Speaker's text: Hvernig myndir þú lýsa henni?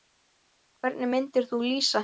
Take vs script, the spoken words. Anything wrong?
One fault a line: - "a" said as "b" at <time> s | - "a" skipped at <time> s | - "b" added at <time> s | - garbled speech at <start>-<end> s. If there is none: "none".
none